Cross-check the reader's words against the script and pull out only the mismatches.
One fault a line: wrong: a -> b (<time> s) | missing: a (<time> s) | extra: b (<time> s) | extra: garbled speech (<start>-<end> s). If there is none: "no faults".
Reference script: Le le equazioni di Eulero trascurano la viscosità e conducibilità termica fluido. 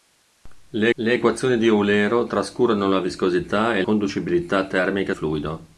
no faults